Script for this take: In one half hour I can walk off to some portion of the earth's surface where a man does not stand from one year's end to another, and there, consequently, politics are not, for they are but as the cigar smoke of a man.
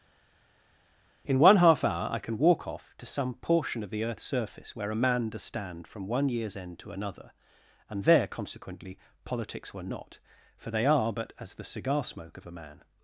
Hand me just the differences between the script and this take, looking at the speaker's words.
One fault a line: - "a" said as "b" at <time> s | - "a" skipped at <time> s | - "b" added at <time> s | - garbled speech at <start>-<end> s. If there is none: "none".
- "not" skipped at 5.4 s
- "are" said as "were" at 9.7 s